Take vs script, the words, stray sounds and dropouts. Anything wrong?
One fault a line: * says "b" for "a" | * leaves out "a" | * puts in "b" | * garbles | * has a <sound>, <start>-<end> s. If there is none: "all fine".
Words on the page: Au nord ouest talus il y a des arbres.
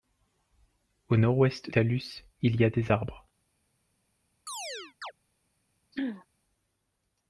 * has a chirp, 4.5-5.1 s
* has a throat clearing, 5.9-6.3 s